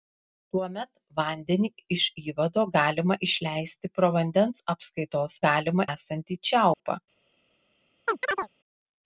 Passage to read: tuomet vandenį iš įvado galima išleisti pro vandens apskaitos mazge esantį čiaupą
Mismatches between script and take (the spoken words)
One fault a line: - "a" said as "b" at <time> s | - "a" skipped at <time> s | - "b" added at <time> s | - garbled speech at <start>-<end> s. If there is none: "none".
- "mazge" said as "galima" at 5.5 s